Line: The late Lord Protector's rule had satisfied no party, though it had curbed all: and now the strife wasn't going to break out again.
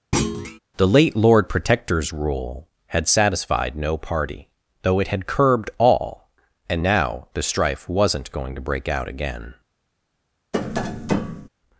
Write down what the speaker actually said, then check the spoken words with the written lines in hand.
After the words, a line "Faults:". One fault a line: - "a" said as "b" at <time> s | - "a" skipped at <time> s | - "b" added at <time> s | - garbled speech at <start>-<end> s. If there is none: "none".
The late Lord Protector's rule had satisfied no party, though it had curbed all: and now the strife wasn't going to break out again.
Faults:
none